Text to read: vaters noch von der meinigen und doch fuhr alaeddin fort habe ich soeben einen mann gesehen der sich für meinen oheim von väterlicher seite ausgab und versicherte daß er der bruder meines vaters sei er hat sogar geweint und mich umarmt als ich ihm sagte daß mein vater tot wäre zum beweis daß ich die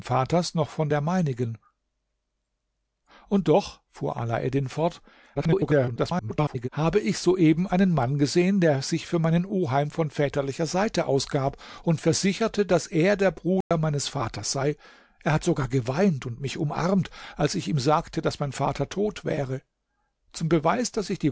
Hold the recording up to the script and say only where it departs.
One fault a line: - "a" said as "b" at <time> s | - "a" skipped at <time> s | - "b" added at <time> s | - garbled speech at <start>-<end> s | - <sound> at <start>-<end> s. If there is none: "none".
- garbled speech at 5.3-6.7 s
- dropout at 13.6-13.7 s